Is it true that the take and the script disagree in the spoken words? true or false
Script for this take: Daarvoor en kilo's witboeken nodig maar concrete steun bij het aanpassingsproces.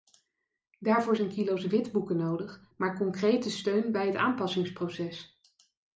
false